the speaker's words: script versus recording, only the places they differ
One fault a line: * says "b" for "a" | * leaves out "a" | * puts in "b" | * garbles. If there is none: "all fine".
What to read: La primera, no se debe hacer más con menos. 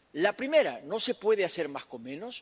* says "puede" for "debe"